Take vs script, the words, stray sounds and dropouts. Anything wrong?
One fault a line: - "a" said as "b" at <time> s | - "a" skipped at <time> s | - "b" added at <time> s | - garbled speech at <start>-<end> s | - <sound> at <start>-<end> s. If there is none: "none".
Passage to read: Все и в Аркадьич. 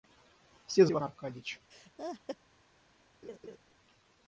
- laugh at 1.7-2.4 s
- laugh at 3.2-3.6 s